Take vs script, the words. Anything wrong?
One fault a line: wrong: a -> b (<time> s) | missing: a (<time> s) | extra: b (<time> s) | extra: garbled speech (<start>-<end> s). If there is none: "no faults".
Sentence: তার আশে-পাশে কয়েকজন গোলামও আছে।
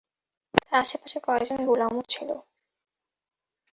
wrong: আছে -> ছিল (2.1 s)